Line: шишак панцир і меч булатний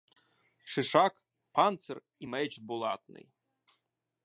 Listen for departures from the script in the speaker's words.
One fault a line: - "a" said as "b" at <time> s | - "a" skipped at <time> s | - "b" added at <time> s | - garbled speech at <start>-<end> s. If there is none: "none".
none